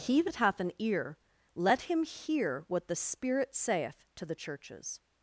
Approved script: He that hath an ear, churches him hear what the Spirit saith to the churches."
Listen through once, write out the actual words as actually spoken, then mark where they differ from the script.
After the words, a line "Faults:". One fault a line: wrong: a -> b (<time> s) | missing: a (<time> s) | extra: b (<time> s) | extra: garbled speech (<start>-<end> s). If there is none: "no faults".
He that hath an ear, let him hear what the Spirit saith to the churches."
Faults:
wrong: churches -> let (1.5 s)